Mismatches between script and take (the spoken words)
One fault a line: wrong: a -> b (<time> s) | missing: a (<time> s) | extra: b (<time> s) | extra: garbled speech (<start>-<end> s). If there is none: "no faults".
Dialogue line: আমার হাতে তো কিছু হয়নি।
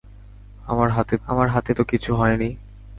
extra: আমার হাতে (1.3 s)